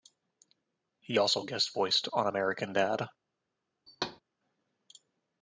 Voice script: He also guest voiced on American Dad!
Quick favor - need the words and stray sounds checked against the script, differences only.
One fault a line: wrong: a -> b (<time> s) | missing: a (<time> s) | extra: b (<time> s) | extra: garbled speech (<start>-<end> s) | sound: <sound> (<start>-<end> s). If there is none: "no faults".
sound: thud (3.9-4.2 s)